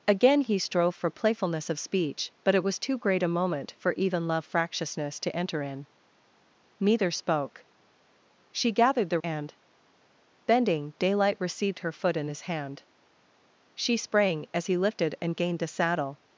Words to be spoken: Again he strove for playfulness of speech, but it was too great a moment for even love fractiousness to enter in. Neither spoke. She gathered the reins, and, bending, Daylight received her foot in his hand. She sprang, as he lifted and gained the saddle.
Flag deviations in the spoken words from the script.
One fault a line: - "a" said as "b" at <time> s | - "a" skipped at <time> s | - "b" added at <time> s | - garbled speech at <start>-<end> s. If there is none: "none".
- "reins" skipped at 9.2 s